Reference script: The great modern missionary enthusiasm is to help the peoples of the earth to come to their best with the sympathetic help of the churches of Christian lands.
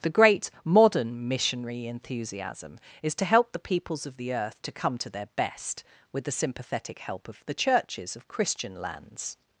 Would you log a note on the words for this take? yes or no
no